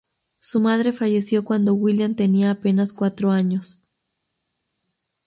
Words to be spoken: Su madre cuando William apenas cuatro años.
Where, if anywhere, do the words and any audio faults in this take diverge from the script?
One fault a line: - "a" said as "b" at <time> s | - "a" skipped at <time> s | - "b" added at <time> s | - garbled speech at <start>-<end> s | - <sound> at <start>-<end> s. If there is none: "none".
- "falleció" added at 0.9 s
- "tenía" added at 2.1 s